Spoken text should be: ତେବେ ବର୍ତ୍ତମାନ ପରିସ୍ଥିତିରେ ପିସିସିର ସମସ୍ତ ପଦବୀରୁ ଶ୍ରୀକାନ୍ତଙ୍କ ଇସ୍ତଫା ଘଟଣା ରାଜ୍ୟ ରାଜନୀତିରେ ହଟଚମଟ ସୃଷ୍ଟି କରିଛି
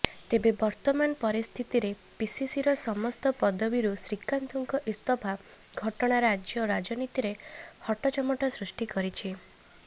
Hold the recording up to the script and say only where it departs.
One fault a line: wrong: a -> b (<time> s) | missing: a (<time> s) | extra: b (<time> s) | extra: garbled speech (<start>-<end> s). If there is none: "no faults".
no faults